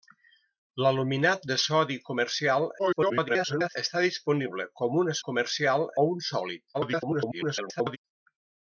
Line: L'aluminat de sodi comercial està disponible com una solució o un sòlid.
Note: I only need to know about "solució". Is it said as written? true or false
false